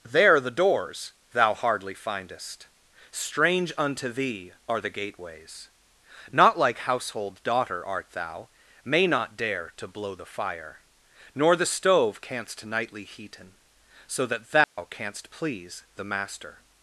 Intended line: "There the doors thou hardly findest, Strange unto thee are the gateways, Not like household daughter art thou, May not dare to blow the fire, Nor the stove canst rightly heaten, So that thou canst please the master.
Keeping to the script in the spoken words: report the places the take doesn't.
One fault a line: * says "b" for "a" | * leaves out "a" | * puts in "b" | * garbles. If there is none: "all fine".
* says "nightly" for "rightly"